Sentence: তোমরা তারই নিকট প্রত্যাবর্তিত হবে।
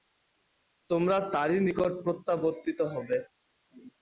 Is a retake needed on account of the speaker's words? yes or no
no